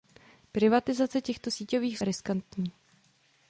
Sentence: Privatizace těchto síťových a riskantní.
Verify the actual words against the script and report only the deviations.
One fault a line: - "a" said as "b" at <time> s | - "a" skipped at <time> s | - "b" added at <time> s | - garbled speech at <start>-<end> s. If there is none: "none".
none